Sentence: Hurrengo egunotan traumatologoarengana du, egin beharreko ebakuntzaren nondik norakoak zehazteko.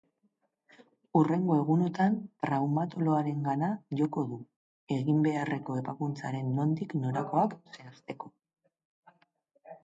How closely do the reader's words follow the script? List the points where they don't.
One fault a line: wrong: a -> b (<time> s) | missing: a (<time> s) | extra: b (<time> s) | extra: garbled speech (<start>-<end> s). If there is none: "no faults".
extra: joko (4.0 s)